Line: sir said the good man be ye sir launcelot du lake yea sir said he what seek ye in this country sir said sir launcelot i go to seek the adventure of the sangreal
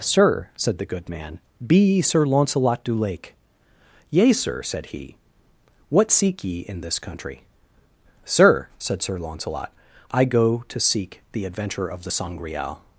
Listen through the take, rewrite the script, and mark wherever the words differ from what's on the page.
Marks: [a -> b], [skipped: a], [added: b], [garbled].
sir said the good man be ye sir launcelot du lake yea sir said he what seek ye in this country sir said sir launcelot i go to seek the adventure of the sangreal